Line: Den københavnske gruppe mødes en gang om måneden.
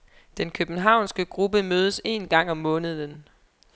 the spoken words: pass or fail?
pass